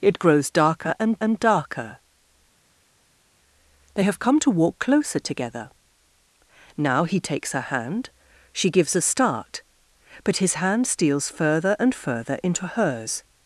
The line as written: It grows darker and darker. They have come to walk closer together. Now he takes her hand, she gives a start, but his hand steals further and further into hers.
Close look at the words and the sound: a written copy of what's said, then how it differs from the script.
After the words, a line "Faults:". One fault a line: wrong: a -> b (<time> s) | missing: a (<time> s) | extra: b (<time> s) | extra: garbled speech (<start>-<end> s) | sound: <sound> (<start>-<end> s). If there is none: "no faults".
It grows darker and and darker. They have come to walk closer together. Now he takes her hand, she gives a start, but his hand steals further and further into hers.
Faults:
extra: and (1.2 s)